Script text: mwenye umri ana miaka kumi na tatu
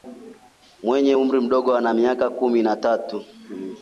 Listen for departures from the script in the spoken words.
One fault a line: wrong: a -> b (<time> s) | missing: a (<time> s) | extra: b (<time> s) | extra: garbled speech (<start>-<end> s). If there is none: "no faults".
extra: mdogo (1.4 s)